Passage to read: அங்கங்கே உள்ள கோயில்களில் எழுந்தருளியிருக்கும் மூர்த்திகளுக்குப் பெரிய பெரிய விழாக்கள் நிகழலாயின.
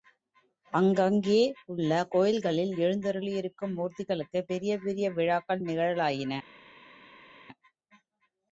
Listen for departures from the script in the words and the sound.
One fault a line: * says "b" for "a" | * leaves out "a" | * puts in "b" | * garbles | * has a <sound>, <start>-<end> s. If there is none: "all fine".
all fine